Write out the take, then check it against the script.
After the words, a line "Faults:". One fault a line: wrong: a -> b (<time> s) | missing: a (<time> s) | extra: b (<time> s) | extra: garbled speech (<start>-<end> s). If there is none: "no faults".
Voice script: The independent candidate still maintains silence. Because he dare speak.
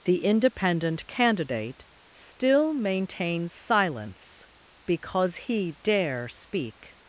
The independent candidate still maintains silence. Because he dare speak.
Faults:
no faults